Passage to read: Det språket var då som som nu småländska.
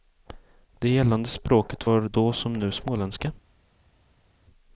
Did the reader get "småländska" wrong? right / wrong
right